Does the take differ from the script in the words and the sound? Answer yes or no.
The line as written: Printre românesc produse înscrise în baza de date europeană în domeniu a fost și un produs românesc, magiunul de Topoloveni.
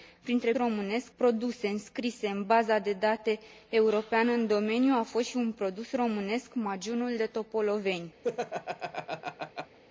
yes